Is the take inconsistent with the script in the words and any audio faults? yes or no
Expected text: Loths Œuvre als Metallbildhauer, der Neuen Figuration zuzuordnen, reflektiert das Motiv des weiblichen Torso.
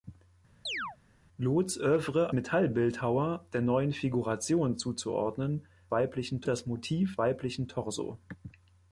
yes